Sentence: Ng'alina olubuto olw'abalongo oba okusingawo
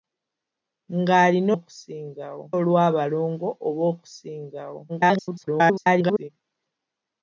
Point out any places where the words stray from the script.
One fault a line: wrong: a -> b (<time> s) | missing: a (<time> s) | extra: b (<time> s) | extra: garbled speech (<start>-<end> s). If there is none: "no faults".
wrong: olubuto -> okusingawo (1.6 s)
extra: garbled speech (4.9-6.3 s)